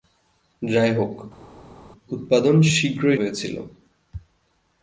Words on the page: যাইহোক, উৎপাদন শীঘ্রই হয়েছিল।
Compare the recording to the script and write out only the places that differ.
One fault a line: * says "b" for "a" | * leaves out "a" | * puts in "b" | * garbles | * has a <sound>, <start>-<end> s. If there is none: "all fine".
all fine